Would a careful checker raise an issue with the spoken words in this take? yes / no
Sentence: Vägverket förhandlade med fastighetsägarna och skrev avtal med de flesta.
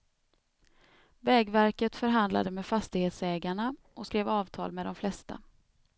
no